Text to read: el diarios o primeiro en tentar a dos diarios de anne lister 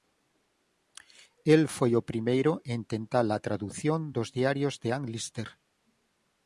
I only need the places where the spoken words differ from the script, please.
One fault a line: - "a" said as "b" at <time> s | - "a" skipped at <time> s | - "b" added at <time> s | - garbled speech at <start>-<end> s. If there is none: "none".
- "diarios" said as "foi" at 1.8 s
- "tradución" added at 3.5 s